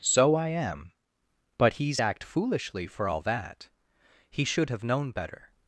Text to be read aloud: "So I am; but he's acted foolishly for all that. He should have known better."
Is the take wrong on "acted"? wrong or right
wrong